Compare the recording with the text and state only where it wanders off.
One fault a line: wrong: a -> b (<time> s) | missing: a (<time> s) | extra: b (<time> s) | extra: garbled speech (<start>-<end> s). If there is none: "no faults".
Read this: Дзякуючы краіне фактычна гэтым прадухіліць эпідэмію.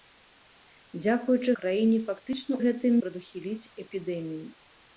no faults